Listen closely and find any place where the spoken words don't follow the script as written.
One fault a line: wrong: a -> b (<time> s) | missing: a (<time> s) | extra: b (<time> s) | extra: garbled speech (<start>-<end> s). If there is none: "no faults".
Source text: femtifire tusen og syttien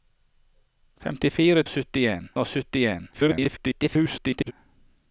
wrong: tusen -> syttien (1.7 s)
extra: garbled speech (3.1-4.5 s)